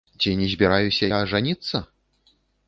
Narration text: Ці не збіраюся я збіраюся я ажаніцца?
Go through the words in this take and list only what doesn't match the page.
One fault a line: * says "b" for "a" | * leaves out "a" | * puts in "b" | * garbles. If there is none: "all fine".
* leaves out "збіраюся я"